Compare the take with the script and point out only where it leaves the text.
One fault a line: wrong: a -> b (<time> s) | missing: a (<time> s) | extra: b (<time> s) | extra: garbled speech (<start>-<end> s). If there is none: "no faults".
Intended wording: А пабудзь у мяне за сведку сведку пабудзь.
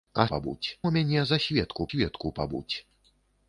no faults